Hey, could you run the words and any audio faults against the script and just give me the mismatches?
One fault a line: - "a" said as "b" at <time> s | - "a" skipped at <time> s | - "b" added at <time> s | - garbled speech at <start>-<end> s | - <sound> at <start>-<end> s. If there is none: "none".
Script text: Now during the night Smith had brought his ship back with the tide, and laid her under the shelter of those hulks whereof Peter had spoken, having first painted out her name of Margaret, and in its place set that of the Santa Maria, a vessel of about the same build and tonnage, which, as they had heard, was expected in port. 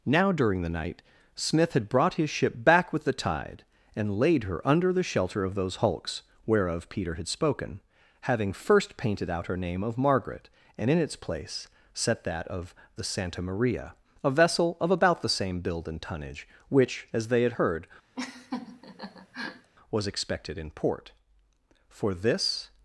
- laugh at 18.2-19.7 s
- "For this" added at 21.9 s